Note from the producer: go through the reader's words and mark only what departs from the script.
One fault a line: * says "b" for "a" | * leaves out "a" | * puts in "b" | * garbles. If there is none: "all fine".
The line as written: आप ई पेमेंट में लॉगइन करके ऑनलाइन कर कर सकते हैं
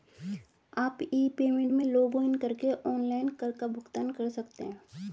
* puts in "का भुगतान"